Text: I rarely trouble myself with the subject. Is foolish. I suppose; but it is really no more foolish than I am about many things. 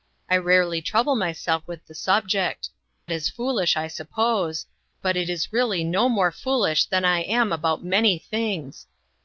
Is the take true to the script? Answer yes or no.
yes